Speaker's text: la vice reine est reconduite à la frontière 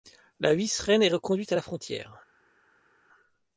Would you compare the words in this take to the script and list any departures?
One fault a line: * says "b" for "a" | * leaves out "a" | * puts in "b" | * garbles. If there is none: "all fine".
all fine